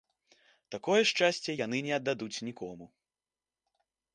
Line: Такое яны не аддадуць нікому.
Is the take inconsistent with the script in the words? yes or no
yes